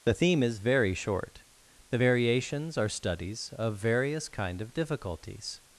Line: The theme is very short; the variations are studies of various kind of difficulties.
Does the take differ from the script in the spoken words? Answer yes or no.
no